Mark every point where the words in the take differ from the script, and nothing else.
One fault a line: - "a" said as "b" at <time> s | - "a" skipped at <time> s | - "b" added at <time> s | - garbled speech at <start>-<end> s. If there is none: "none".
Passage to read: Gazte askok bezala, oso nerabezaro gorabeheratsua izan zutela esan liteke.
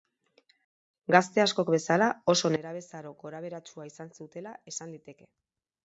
none